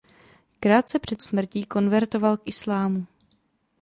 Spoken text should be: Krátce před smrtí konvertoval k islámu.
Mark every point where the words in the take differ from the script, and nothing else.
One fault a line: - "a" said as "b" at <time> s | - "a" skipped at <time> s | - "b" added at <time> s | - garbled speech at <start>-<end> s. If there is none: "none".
none